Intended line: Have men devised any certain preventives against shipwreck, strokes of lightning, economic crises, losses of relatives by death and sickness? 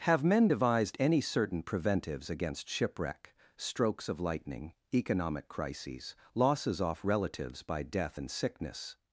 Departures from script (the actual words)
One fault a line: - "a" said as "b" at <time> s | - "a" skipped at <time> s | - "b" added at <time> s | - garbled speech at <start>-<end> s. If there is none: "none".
- "of" said as "off" at 6.8 s